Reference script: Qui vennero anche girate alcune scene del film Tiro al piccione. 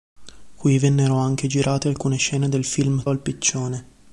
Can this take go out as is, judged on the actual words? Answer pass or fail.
fail